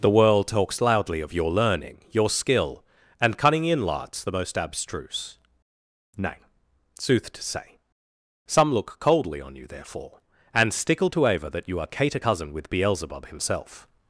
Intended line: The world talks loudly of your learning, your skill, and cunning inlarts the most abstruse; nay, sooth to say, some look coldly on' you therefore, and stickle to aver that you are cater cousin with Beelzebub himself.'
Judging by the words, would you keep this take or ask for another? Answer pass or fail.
pass